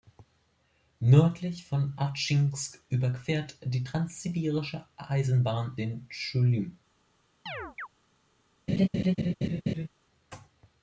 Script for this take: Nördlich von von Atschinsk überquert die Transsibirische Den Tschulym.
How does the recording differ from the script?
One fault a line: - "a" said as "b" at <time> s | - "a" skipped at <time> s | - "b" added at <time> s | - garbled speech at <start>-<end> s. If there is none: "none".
- "von" skipped at 1.9 s
- "Eisenbahn" added at 5.0 s